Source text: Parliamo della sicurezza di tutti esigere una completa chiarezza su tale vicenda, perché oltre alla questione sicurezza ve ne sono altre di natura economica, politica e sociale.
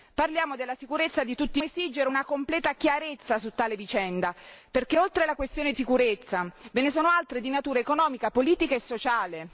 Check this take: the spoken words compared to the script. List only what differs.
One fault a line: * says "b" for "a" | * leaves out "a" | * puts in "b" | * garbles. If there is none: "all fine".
all fine